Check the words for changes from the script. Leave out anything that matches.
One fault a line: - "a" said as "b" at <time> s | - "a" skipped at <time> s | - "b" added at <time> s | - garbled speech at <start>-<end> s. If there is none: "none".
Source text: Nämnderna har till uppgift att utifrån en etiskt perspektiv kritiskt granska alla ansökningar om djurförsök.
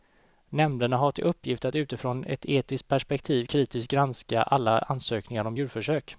- "en" said as "ett" at 2.2 s